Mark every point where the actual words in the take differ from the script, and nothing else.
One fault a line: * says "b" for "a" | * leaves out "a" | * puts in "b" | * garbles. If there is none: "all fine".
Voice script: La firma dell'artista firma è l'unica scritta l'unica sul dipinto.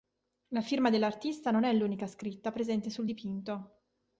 * says "non" for "firma"
* says "presente" for "l'unica"